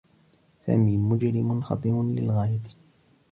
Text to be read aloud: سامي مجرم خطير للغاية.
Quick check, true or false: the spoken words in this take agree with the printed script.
true